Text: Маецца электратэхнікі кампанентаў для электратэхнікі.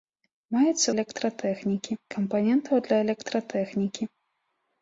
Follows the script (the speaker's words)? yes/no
yes